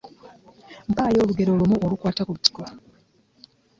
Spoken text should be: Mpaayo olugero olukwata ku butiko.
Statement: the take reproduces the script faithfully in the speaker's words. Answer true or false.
false